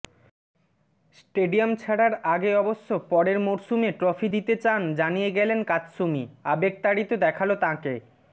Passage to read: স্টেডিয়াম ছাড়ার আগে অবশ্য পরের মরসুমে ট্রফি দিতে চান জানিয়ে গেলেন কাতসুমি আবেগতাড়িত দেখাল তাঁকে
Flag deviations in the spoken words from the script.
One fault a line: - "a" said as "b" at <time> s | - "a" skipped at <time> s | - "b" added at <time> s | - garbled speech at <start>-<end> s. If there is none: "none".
none